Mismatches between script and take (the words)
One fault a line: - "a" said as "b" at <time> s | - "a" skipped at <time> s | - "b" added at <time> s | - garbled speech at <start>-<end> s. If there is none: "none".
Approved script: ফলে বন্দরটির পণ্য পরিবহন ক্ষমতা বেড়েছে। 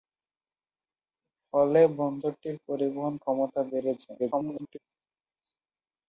- "পণ্য" skipped at 2.6 s
- garbled speech at 4.2-4.8 s